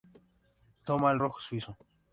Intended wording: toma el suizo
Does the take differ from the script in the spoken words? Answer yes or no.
yes